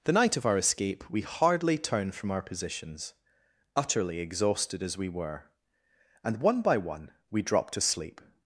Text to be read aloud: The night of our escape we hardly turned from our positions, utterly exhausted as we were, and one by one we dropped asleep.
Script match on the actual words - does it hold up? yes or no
yes